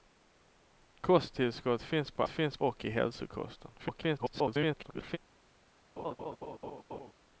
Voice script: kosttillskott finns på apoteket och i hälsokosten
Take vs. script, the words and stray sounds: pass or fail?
fail